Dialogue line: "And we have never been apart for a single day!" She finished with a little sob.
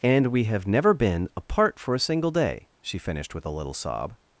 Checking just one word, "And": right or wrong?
right